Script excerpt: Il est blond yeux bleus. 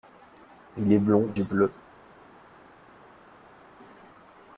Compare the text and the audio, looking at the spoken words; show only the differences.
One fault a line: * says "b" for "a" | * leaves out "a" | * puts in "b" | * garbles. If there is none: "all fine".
all fine